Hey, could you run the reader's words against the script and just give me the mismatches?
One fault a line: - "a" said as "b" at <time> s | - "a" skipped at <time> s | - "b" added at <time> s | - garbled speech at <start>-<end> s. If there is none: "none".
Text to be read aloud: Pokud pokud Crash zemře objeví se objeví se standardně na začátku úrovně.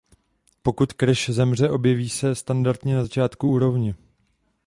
- "pokud" skipped at 0.9 s
- "objeví se" skipped at 2.4 s